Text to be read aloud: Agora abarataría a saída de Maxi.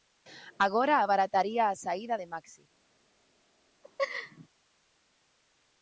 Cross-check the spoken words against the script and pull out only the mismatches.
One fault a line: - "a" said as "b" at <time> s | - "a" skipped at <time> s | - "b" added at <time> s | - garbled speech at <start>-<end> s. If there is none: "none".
none